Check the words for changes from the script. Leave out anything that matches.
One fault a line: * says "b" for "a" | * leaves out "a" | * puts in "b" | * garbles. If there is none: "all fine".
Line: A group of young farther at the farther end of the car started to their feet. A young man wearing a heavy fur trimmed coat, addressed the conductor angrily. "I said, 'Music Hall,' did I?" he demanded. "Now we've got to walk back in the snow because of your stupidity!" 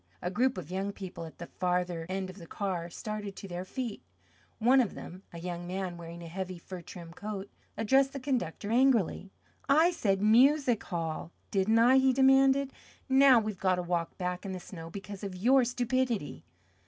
* says "people" for "farther"
* puts in "One of them"
* says "didn't" for "did"